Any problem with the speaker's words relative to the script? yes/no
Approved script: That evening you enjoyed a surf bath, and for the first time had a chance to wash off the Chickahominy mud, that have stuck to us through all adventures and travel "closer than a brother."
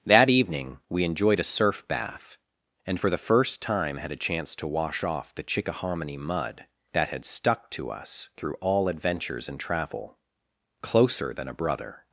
yes